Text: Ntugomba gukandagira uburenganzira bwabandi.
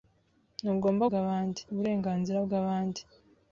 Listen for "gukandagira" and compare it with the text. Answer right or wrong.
wrong